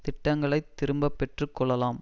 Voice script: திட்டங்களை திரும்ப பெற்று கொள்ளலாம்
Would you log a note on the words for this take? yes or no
no